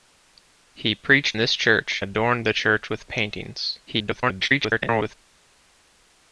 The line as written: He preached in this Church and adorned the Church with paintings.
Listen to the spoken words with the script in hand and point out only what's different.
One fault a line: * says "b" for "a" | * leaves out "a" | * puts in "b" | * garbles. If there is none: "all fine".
* leaves out "in"
* leaves out "and"
* garbles